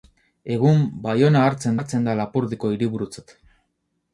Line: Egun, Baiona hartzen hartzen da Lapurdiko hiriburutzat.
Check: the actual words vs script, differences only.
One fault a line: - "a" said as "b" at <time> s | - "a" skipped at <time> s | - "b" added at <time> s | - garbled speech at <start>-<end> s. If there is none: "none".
none